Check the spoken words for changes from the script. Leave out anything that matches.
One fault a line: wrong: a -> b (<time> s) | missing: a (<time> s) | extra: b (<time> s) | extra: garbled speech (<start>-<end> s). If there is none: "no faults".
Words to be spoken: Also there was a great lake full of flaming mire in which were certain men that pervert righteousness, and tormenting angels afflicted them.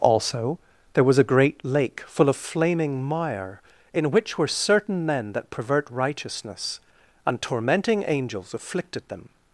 no faults